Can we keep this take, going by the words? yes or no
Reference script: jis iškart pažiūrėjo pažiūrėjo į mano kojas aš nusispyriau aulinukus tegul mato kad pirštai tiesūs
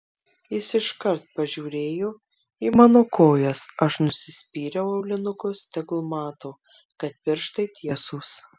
no